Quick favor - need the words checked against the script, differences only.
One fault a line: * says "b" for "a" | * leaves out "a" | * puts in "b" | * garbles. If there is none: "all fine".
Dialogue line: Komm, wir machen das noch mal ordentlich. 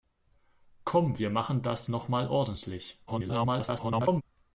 * garbles